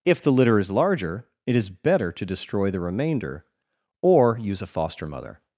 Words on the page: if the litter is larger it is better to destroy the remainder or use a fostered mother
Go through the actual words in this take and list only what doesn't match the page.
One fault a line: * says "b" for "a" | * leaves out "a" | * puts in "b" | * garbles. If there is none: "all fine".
* says "foster" for "fostered"